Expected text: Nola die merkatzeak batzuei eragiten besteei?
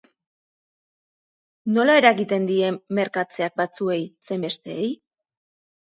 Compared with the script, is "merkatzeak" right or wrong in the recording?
right